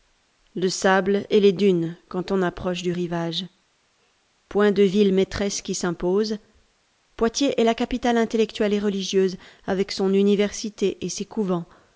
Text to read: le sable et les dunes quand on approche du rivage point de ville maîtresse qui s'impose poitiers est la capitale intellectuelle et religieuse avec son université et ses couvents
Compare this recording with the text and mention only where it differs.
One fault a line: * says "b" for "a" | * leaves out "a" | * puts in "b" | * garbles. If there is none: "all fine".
all fine